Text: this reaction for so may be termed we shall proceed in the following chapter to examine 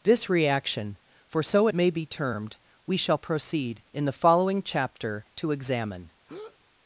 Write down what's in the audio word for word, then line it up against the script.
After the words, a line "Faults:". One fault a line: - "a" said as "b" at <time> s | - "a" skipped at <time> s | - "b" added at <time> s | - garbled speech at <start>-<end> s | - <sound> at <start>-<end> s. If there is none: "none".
this reaction for so may be termed we shall proceed in the following chapter to examine
Faults:
- breath at 6.3-6.6 s